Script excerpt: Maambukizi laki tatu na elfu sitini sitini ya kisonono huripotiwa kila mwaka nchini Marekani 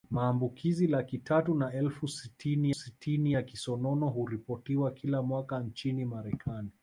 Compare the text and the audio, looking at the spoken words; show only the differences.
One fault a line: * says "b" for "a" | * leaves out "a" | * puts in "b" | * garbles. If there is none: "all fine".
all fine